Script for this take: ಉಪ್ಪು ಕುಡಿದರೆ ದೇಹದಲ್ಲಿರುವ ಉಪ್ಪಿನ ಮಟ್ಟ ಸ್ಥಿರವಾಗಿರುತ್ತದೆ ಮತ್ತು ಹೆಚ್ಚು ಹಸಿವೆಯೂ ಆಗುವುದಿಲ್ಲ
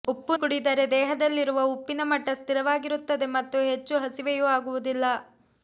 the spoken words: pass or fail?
pass